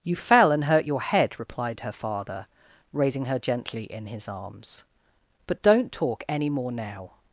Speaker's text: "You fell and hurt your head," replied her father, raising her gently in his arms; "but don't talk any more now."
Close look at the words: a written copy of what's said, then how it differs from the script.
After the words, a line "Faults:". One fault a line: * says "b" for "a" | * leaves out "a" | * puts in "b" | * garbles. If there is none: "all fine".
"You fell and hurt your head," replied her father, raising her gently in his arms; "but don't talk any more now."
Faults:
all fine